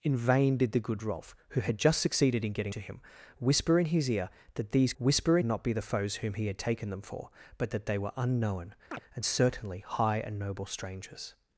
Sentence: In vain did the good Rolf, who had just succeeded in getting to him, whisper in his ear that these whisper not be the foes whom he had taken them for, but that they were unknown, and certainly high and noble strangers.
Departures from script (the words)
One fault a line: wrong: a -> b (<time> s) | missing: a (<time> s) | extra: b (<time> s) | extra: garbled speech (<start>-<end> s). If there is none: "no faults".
no faults